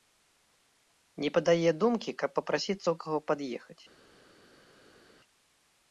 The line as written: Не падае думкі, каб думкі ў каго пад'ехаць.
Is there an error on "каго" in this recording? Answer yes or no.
no